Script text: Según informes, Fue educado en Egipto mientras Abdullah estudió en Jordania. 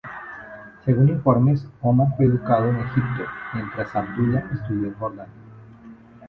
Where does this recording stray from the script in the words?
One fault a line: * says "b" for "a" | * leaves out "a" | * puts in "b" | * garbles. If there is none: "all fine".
* puts in "Omar"